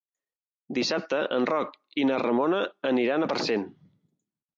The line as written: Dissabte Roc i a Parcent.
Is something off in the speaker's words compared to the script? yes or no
yes